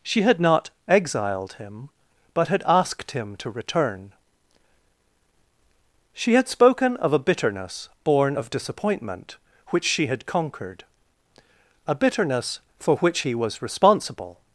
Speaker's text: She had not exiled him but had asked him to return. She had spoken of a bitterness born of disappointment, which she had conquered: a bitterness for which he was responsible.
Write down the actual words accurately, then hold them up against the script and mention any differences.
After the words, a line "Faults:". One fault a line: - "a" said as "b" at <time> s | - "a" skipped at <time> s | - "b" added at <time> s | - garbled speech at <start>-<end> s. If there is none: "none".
She had not exiled him but had asked him to return. She had spoken of a bitterness born of disappointment, which she had conquered: a bitterness for which he was responsible.
Faults:
none